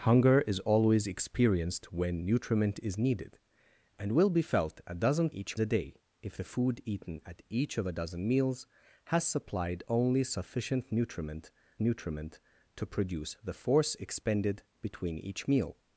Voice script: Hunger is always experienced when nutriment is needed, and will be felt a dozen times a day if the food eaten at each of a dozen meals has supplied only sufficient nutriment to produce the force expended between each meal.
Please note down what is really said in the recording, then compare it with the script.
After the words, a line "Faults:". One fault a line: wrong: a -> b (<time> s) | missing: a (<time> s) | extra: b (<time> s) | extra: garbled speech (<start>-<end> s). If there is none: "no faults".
Hunger is always experienced when nutriment is needed, and will be felt a dozen each a day if the food eaten at each of a dozen meals has supplied only sufficient nutriment nutriment to produce the force expended between each meal.
Faults:
wrong: times -> each (5.3 s)
extra: nutriment (11.8 s)